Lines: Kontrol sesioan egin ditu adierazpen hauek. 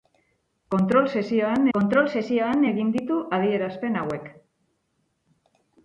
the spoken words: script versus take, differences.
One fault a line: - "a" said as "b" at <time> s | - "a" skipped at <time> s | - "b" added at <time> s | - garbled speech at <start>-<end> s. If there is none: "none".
- "kontrol sesioan" added at 1.8 s